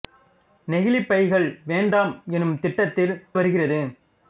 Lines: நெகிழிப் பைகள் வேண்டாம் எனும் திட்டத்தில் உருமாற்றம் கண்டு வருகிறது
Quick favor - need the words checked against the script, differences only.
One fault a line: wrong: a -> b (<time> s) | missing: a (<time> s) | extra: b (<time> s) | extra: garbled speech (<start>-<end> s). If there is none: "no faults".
missing: உருமாற்றம் கண்டு (3.1 s)